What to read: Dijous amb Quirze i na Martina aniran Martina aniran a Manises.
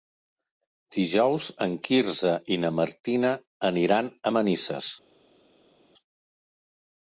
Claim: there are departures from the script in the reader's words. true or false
true